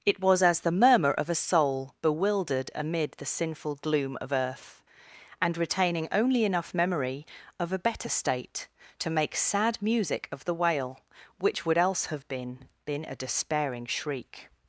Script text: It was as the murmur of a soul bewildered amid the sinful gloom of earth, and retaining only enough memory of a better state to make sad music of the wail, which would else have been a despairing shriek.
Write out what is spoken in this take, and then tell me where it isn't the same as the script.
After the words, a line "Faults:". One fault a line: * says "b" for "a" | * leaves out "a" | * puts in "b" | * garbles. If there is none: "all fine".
It was as the murmur of a soul bewildered amid the sinful gloom of earth, and retaining only enough memory of a better state to make sad music of the wail, which would else have been been a despairing shriek.
Faults:
* puts in "been"